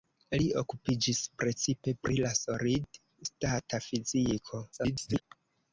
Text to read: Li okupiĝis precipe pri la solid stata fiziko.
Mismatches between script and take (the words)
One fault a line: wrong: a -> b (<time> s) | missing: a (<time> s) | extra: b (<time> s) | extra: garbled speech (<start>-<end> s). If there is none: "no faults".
extra: garbled speech (4.7-5.2 s)